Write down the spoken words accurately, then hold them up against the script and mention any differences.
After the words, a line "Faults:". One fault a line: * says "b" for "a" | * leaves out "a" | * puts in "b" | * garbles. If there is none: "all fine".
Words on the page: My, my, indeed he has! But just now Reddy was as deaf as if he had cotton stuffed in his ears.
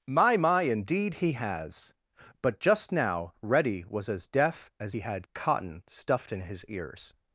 My, my, indeed he has! But just now Reddy was as deaf as he had cotton stuffed in his ears.
Faults:
* leaves out "if"